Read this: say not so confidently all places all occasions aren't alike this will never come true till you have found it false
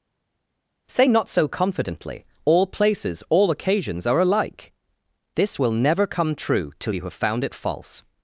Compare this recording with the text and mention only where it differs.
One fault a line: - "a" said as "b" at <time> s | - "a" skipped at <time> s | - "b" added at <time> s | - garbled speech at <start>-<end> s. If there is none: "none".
- "aren't" said as "are" at 4.0 s